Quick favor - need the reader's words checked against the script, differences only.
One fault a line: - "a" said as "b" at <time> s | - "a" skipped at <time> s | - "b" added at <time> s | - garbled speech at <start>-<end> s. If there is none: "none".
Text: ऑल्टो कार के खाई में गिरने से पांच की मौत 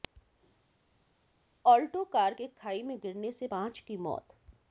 none